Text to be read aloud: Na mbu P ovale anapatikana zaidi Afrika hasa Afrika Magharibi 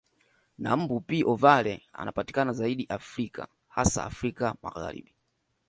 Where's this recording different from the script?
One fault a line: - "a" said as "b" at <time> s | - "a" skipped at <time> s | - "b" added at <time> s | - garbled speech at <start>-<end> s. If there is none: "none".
none